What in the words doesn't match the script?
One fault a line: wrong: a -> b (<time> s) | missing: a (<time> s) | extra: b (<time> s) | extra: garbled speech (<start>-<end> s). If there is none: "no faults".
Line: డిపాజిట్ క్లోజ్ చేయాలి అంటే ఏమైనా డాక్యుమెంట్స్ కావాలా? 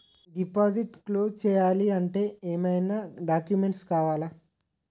no faults